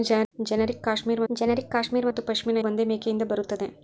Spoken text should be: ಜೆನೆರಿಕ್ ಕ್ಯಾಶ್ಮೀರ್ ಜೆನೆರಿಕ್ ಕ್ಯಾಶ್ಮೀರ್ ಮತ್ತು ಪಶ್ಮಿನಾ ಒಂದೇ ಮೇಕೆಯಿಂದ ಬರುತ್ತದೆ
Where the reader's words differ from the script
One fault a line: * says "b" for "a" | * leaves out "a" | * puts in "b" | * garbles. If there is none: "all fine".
all fine